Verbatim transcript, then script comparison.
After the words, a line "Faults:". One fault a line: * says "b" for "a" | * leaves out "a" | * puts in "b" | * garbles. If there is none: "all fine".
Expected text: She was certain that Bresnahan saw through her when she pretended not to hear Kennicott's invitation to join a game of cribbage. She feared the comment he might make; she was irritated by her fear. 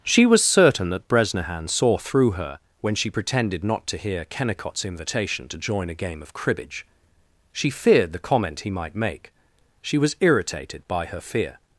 She was certain that Bresnahan saw through her when she pretended not to hear Kennicott's invitation to join a game of cribbage. She feared the comment he might make; she was irritated by her fear.
Faults:
all fine